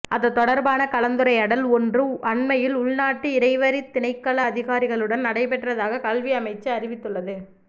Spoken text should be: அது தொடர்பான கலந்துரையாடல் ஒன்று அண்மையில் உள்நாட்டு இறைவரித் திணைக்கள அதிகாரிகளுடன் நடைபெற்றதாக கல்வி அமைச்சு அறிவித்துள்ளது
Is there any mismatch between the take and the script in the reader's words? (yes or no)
no